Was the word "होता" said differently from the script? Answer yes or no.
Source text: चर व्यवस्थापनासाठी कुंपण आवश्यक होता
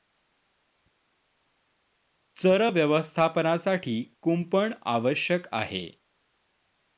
yes